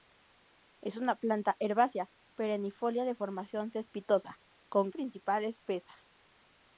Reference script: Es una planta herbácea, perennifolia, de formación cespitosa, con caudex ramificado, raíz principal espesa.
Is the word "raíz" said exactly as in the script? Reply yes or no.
no